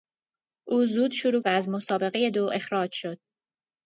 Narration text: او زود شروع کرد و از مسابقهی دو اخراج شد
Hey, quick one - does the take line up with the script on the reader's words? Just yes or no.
no